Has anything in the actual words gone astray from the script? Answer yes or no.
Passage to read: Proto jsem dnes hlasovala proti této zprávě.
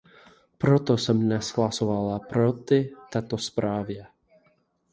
no